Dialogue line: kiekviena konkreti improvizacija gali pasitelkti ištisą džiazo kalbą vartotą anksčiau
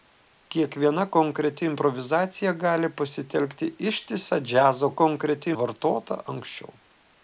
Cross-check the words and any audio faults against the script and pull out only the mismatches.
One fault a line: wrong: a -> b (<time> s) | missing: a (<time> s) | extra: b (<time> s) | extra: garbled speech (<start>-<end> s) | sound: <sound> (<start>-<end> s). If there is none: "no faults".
wrong: kalbą -> konkreti (5.0 s)